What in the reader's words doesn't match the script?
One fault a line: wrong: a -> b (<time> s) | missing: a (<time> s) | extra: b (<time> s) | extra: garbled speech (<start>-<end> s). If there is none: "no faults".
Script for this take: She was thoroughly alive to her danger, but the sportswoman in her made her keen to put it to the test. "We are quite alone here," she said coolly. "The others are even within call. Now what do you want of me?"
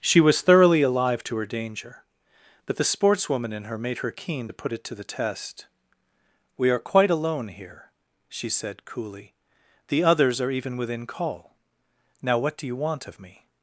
no faults